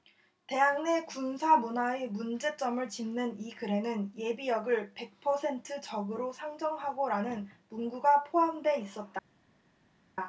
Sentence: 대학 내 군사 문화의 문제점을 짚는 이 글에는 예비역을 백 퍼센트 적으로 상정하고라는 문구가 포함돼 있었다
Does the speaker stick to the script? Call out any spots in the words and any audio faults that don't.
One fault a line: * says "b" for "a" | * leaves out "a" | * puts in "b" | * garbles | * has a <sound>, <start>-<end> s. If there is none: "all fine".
all fine